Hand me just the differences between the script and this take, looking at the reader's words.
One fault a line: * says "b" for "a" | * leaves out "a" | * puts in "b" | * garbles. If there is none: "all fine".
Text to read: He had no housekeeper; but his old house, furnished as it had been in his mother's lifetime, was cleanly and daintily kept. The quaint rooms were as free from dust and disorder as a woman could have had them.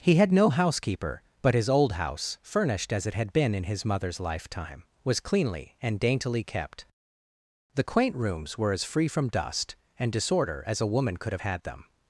all fine